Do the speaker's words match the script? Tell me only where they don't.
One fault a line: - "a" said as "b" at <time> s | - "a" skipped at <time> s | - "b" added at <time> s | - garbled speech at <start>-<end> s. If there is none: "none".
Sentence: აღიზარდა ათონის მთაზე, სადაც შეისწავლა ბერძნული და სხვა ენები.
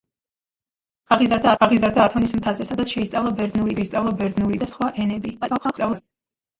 - "აღიზარდა" added at 1.7 s
- "შეისწავლა ბერძნული" added at 3.8 s
- garbled speech at 5.4-6.0 s